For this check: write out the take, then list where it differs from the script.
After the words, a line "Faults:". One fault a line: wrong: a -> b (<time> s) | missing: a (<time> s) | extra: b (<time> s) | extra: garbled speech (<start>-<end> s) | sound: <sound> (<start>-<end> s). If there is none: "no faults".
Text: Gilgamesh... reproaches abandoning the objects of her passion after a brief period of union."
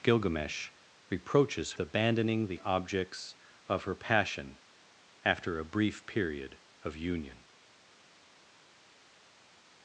Gilgamesh... reproaches abandoning the objects of her passion after a brief period of union."
Faults:
no faults